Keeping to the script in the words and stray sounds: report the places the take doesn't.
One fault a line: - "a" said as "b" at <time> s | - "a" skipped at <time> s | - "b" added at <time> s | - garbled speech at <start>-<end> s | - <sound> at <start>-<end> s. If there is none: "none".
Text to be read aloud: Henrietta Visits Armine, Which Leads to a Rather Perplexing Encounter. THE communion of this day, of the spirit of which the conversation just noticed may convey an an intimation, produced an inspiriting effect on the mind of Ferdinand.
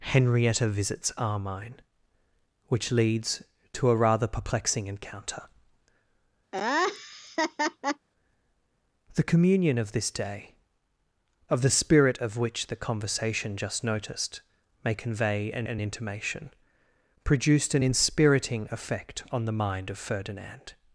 - laugh at 6.5-8.1 s